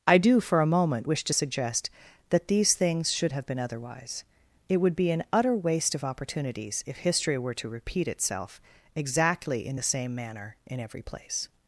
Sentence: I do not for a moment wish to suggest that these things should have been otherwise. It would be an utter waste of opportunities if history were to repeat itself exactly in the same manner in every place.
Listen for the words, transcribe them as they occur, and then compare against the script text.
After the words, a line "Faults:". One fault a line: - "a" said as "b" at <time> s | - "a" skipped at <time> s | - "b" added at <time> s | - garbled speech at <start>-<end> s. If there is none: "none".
I do for a moment wish to suggest that these things should have been otherwise. It would be an utter waste of opportunities if history were to repeat itself exactly in the same manner in every place.
Faults:
- "not" skipped at 0.4 s